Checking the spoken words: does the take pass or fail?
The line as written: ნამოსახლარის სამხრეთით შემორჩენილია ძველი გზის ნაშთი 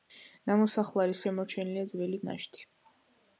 fail